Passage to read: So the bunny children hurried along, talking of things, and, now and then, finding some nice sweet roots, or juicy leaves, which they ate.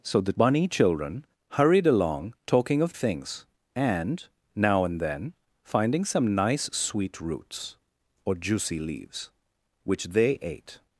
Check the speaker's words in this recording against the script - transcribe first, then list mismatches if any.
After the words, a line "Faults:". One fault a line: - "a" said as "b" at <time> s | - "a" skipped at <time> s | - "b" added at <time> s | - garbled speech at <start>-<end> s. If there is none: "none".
So the bunny children hurried along, talking of things, and, now and then, finding some nice sweet roots, or juicy leaves, which they ate.
Faults:
none